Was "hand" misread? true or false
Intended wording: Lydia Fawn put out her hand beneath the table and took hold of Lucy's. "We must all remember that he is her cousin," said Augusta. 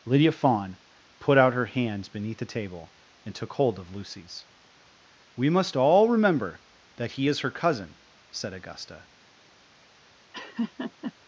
true